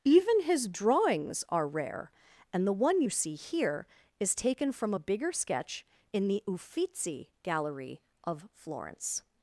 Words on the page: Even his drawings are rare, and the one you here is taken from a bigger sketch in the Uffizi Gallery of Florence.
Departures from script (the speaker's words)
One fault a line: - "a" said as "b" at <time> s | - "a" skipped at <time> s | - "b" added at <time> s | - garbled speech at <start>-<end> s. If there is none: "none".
- "see" added at 3.1 s